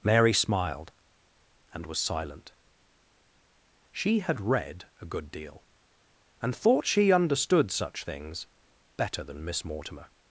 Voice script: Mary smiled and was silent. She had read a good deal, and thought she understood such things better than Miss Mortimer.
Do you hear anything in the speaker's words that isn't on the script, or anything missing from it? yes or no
no